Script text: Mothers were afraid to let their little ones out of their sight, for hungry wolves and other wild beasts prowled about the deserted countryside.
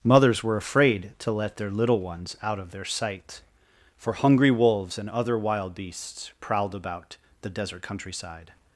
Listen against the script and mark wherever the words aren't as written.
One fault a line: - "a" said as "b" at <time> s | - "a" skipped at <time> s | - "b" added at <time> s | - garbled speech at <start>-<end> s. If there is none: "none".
- "deserted" said as "desert" at 7.5 s